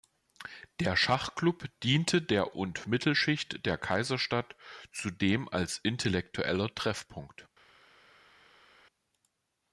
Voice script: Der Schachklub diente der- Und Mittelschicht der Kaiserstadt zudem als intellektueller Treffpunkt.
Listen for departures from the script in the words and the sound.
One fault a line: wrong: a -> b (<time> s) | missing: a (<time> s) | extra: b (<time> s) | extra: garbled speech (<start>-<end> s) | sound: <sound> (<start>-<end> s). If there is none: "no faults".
no faults